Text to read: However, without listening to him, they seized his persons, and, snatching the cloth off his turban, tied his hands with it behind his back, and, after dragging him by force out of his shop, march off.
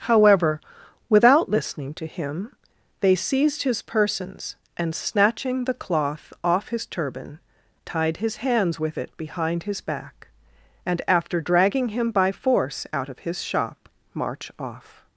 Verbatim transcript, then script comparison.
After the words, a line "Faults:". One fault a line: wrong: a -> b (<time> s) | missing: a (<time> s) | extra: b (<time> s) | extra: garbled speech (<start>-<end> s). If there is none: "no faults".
However, without listening to him, they seized his persons, and, snatching the cloth off his turban, tied his hands with it behind his back, and, after dragging him by force out of his shop, march off.
Faults:
no faults